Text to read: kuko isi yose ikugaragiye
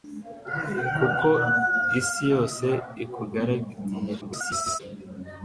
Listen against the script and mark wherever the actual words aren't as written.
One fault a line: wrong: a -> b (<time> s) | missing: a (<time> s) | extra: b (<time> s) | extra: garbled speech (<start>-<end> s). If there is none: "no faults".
extra: garbled speech (4.2-4.8 s)